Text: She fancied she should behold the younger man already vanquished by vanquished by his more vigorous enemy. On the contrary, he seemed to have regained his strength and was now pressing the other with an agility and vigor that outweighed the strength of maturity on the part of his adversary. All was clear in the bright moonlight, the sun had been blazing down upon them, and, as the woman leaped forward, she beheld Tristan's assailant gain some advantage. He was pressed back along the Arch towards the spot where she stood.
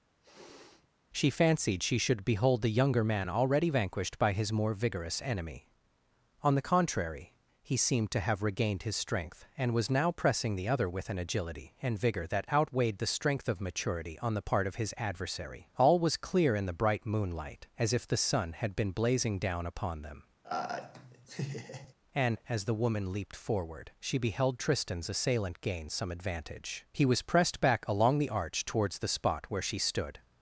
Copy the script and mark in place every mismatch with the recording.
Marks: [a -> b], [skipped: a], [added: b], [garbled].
She fancied she should behold the younger man already vanquished by [skipped: vanquished by] his more vigorous enemy. On the contrary, he seemed to have regained his strength and was now pressing the other with an agility and vigor that outweighed the strength of maturity on the part of his adversary. All was clear in the bright moonlight, [added: as if] the sun had been blazing down upon them, and, as the woman leaped forward, she beheld Tristan's assailant gain some advantage. He was pressed back along the Arch towards the spot where she stood.